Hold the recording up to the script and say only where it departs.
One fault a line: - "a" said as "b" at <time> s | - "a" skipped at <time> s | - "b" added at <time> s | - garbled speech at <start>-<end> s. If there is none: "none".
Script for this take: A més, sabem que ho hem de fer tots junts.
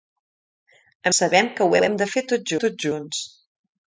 - "més" skipped at 1.1 s
- "ho" added at 1.8 s
- "tots" added at 2.6 s